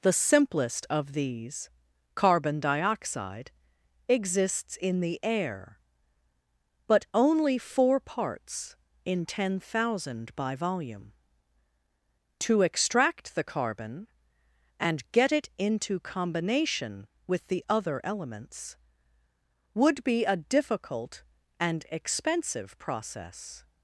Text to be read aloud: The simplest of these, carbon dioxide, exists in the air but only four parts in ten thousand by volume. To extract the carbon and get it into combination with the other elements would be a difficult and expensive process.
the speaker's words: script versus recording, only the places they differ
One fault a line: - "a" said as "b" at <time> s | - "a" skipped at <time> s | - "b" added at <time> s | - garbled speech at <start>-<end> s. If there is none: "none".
none